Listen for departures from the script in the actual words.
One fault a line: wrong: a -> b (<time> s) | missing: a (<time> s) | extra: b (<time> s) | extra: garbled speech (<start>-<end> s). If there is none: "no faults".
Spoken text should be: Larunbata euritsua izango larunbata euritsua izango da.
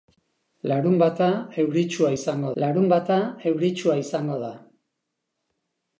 no faults